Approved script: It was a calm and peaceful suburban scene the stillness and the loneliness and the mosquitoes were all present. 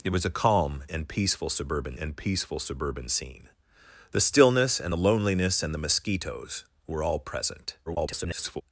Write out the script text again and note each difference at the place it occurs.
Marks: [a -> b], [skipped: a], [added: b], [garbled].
It was a calm and peaceful suburban [added: and peaceful suburban] scene the stillness and the loneliness and the mosquitoes were all present. [garbled]